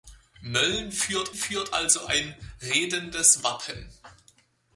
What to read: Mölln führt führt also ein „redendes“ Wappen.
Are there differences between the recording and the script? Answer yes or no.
no